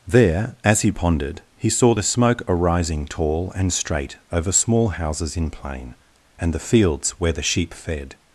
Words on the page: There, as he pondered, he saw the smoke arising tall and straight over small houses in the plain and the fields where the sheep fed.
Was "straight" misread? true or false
false